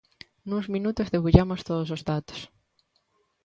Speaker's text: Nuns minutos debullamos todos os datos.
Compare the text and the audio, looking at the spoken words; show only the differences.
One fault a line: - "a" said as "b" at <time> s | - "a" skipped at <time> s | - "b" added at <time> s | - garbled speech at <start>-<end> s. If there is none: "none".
none